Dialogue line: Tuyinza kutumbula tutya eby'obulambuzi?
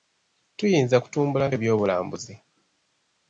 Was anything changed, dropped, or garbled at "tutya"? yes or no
yes